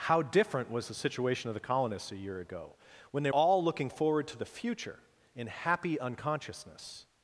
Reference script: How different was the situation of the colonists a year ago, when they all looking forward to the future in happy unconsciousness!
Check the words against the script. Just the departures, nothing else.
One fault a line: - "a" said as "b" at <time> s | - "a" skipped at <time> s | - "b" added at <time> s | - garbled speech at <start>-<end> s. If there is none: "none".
none